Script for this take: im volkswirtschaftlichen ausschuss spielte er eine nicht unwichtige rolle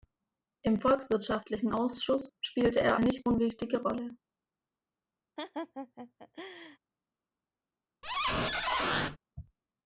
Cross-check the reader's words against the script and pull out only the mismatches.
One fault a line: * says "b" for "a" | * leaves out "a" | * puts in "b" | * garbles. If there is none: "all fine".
* leaves out "eine"